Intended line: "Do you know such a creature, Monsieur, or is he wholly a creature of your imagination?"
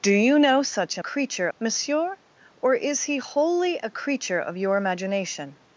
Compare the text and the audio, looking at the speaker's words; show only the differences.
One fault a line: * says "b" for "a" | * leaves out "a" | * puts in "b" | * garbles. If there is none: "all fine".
all fine